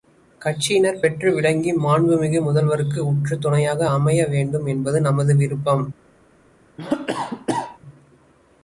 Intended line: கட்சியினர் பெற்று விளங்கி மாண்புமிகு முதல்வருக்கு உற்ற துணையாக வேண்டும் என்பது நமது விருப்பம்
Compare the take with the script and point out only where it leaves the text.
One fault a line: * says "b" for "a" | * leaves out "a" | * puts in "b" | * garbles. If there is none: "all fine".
* puts in "அமைய"